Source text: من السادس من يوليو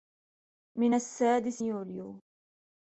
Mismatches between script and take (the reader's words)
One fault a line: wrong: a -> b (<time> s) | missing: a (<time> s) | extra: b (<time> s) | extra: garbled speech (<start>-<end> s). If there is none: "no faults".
missing: من (1.6 s)